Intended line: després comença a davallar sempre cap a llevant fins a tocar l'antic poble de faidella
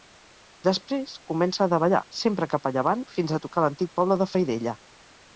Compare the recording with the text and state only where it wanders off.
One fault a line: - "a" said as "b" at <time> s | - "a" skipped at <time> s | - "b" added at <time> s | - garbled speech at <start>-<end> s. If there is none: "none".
none